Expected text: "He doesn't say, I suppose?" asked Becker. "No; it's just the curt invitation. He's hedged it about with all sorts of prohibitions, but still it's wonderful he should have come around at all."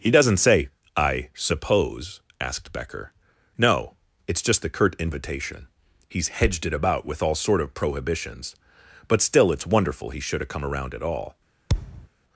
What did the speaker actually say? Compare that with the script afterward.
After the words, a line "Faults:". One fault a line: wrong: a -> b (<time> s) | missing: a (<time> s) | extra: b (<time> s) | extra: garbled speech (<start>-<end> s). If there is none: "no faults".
"He doesn't say, I suppose?" asked Becker. "No; it's just the curt invitation. He's hedged it about with all sort of prohibitions, but still it's wonderful he should have come around at all."
Faults:
wrong: sorts -> sort (7.3 s)